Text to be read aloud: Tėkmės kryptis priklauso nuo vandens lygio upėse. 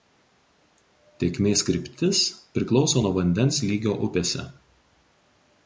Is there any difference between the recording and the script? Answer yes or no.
no